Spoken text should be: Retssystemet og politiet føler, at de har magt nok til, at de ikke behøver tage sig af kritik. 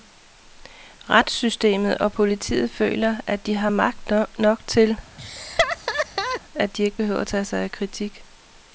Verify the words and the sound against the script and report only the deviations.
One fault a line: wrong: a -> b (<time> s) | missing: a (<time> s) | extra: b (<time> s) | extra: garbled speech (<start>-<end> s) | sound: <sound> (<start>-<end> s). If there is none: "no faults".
sound: laugh (5.2-6.4 s)